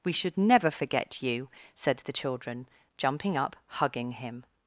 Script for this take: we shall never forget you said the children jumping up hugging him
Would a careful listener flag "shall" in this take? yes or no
yes